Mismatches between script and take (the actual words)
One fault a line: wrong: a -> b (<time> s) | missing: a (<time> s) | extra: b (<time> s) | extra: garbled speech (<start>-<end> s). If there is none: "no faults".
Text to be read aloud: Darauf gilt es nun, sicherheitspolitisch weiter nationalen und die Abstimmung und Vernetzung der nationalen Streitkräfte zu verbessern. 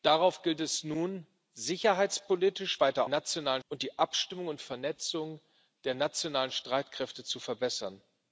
no faults